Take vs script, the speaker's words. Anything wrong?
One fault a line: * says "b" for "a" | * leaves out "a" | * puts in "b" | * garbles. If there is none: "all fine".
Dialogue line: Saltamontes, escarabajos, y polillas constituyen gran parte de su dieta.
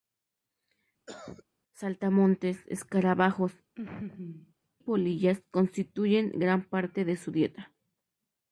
* leaves out "y"